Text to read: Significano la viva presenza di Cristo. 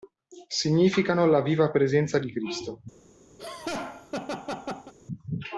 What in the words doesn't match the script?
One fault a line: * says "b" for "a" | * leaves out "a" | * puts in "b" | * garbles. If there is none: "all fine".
all fine